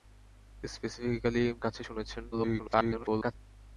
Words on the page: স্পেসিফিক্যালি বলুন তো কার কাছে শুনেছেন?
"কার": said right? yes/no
no